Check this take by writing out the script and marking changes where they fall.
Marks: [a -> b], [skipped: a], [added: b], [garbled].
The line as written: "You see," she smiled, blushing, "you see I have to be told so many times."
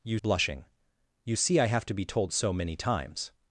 "You [skipped: see," she smiled,] blushing, "you see I have to be told so many times."